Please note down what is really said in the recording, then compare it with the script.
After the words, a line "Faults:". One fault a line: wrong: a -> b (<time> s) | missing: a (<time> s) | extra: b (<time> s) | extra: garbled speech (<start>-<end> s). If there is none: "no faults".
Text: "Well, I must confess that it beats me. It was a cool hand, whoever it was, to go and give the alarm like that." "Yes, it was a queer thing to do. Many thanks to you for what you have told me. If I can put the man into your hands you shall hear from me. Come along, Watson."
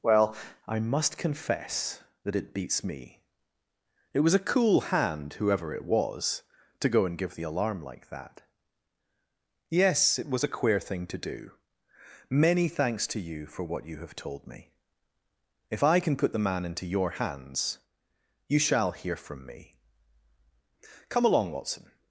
"Well, I must confess that it beats me. It was a cool hand, whoever it was, to go and give the alarm like that." "Yes, it was a queer thing to do. Many thanks to you for what you have told me. If I can put the man into your hands you shall hear from me. Come along, Watson."
Faults:
no faults